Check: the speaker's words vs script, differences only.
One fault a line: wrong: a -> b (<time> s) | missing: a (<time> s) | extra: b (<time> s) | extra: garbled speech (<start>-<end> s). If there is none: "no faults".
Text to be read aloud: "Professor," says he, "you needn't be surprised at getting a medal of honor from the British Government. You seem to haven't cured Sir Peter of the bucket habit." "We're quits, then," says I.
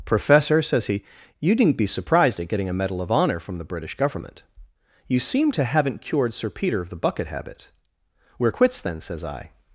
no faults